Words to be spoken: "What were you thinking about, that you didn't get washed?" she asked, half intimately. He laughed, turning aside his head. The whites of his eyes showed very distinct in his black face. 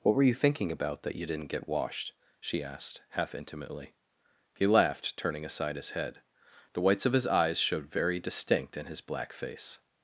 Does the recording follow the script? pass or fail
pass